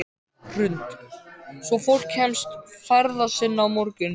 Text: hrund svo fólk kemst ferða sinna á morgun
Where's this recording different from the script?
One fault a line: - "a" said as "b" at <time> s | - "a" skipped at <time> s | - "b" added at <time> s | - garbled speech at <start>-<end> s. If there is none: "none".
none